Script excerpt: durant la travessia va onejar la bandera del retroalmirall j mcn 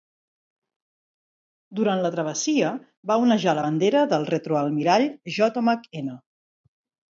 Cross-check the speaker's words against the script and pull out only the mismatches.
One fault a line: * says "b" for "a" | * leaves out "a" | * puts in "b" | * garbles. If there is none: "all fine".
all fine